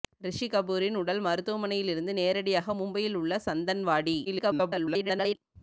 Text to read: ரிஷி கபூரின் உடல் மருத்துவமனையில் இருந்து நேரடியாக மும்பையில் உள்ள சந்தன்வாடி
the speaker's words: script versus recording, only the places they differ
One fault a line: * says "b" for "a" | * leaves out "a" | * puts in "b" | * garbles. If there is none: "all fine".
* garbles